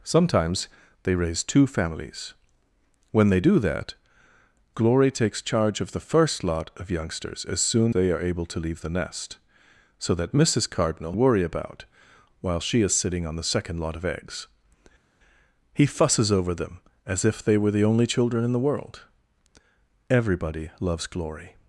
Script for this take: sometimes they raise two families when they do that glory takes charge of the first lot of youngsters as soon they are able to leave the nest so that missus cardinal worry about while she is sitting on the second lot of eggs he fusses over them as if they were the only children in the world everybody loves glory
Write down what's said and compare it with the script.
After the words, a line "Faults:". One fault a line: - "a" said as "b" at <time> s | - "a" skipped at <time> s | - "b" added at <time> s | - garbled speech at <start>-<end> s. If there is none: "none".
sometimes they raise two families when they do that glory takes charge of the first lot of youngsters as soon they are able to leave the nest so that missus cardinal worry about while she is sitting on the second lot of eggs he fusses over them as if they were the only children in the world everybody loves glory
Faults:
none